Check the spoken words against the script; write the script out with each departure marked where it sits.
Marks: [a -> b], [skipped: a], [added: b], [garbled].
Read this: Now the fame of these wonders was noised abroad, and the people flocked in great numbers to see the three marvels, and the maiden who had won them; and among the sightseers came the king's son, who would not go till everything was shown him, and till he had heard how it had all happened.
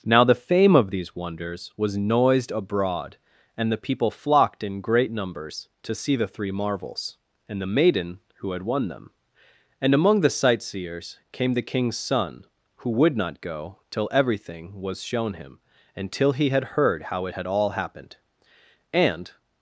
Now the fame of these wonders was noised abroad, and the people flocked in great numbers to see the three marvels, and the maiden who had won them; and among the sightseers came the king's son, who would not go till everything was shown him, and till he had heard how it had all happened. [added: And]